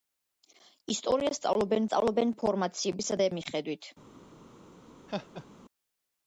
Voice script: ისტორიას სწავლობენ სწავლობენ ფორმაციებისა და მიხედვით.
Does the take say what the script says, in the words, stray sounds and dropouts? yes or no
no